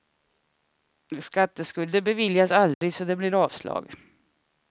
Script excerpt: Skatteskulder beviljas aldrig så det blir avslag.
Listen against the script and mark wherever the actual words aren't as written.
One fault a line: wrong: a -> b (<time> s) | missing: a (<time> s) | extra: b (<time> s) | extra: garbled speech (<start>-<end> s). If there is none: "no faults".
no faults